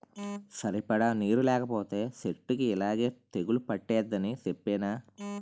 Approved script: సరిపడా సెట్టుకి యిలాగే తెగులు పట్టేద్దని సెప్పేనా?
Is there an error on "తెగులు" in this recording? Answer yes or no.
no